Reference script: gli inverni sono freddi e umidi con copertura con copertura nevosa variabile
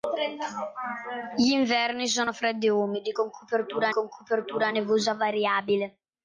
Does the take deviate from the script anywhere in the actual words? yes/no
no